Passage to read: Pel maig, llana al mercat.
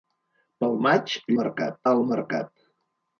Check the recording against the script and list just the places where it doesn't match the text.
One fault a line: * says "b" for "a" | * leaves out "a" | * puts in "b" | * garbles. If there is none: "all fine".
* says "mercat" for "llana"